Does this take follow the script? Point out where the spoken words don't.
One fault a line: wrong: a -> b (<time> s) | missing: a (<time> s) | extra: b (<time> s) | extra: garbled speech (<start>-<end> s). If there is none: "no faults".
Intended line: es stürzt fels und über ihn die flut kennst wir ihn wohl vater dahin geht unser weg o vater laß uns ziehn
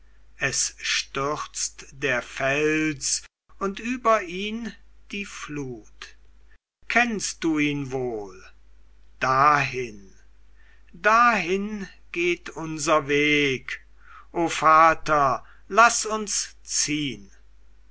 extra: der (1.9 s)
wrong: wir -> du (7.4 s)
wrong: vater -> dahin (9.2 s)